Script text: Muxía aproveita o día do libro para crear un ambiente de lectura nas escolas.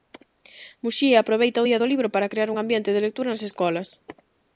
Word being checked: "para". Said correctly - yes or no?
yes